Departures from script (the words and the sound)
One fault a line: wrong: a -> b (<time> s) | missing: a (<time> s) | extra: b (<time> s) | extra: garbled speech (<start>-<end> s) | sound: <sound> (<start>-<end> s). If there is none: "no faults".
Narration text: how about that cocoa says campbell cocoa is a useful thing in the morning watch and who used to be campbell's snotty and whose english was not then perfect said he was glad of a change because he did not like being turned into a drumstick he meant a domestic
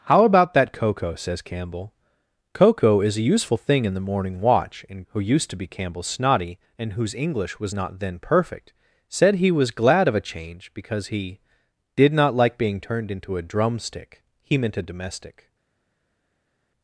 no faults